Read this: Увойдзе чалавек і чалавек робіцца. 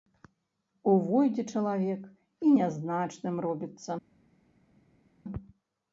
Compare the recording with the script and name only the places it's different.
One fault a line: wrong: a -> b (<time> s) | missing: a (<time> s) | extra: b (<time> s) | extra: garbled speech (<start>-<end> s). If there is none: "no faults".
wrong: чалавек -> нязначным (2.6 s)